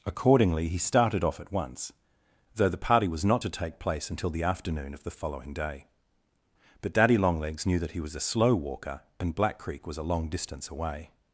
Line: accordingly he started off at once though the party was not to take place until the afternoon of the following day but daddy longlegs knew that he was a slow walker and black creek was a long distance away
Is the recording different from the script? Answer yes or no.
no